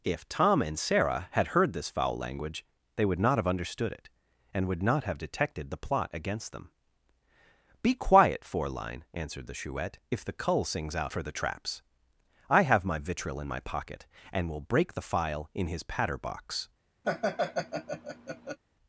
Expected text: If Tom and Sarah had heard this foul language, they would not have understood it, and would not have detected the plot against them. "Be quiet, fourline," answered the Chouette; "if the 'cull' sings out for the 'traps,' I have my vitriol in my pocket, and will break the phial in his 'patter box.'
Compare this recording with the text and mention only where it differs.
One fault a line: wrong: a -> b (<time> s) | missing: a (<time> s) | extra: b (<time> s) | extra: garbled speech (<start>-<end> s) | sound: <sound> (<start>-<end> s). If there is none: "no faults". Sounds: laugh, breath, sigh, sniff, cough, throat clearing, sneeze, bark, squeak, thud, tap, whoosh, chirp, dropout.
sound: laugh (17.0-18.6 s)